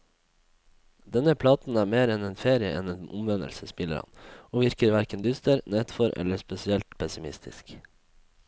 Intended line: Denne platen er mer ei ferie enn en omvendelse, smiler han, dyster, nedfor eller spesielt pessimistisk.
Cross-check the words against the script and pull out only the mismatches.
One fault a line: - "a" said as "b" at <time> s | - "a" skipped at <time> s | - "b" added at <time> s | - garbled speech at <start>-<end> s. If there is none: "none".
- "ei" said as "en" at 2.1 s
- "og virker hverken" added at 4.5 s